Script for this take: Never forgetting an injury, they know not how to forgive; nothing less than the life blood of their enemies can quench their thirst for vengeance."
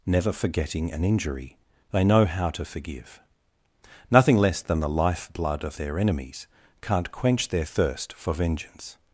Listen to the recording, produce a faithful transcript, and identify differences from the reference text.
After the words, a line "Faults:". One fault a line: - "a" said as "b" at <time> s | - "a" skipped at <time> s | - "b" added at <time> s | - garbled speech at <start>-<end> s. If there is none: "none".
Never forgetting an injury, they know how to forgive; nothing less than the life blood of their enemies can't quench their thirst for vengeance."
Faults:
- "not" skipped at 2.2 s
- "can" said as "can't" at 6.8 s